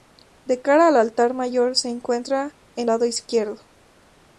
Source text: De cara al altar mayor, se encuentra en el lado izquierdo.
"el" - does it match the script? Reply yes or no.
no